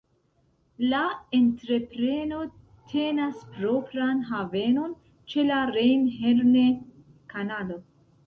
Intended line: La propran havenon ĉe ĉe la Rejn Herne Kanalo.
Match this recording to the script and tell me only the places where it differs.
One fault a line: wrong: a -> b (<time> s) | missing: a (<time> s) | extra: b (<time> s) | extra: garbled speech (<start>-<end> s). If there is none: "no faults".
extra: entrepreno tenas (1.4 s)
missing: ĉe (5.5 s)